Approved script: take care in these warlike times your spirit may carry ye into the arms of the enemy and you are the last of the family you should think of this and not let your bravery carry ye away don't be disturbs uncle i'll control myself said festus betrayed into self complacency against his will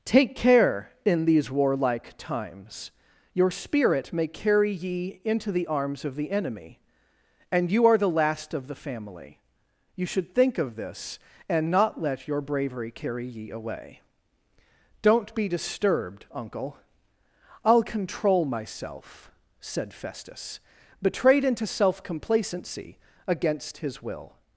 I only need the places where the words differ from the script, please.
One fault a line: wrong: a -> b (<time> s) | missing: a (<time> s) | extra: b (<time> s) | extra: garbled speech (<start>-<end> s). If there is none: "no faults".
wrong: disturbs -> disturbed (15.5 s)